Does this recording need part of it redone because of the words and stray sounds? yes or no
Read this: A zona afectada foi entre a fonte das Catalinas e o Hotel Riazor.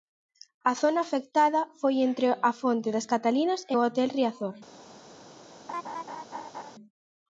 yes